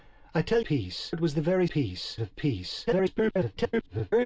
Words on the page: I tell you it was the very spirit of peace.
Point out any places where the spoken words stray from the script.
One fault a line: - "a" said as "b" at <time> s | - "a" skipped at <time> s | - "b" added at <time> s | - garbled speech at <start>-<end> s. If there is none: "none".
- "you" said as "peace" at 0.6 s
- "spirit" said as "peace" at 1.7 s
- garbled speech at 2.9-4.3 s